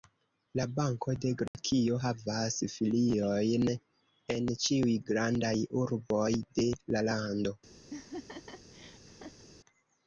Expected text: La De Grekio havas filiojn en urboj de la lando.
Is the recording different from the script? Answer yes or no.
yes